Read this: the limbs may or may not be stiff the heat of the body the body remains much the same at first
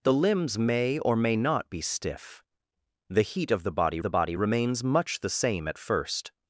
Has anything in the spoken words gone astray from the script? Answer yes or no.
no